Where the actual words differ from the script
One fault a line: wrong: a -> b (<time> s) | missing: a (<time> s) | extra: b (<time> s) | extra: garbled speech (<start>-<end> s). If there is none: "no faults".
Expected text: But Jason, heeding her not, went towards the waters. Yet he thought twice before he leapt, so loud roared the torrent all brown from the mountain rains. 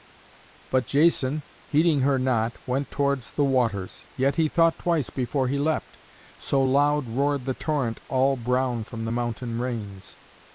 no faults